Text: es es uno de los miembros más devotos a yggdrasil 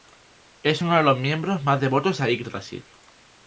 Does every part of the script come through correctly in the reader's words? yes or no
no